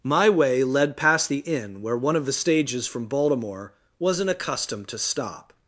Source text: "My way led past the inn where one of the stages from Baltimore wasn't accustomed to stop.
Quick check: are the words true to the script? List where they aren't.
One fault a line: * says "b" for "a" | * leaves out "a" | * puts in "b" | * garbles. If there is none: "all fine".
all fine